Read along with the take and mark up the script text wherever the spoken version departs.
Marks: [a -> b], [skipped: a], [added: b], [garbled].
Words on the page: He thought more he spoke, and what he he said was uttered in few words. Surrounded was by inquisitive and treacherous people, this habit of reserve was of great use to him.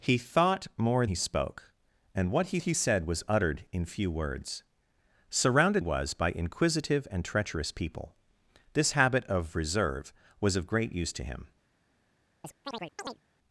He thought more he spoke, and what he he said was uttered in few words. Surrounded was by inquisitive and treacherous people, this habit of reserve was of great use to him.